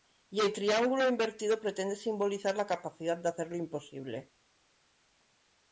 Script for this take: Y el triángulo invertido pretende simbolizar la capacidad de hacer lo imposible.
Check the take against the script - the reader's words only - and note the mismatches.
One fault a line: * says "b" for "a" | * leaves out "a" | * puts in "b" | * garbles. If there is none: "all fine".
all fine